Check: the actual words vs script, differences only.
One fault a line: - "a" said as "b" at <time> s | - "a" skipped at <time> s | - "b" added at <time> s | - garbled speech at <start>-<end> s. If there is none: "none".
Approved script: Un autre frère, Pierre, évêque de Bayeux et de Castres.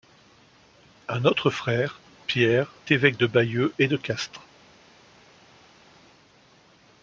none